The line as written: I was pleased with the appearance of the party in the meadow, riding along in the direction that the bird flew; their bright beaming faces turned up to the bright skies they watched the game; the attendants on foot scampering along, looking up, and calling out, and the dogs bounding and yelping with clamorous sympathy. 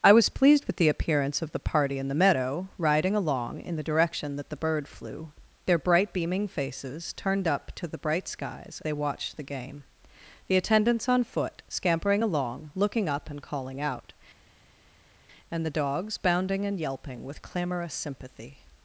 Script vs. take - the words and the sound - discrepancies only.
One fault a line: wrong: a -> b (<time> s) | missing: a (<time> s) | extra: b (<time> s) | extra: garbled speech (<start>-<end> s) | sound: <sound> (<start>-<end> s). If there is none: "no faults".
no faults